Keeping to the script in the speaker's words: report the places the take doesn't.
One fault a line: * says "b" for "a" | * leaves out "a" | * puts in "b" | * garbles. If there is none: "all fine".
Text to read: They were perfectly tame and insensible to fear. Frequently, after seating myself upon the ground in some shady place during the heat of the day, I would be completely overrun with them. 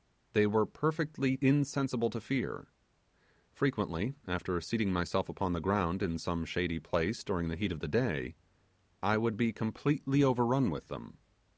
* leaves out "tame and"